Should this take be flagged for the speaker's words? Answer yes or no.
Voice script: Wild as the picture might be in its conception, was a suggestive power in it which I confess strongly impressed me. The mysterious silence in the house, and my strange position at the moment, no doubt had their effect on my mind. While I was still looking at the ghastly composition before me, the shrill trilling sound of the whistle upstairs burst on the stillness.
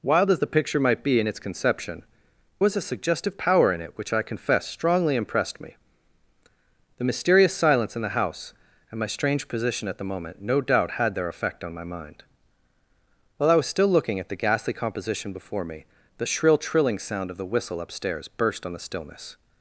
no